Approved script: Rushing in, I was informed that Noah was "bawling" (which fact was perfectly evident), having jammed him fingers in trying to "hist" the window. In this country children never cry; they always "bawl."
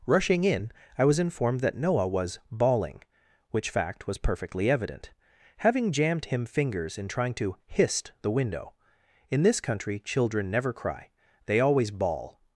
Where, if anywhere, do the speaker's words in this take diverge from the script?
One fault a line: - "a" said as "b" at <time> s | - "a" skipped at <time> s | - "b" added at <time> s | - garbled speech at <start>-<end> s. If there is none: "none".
none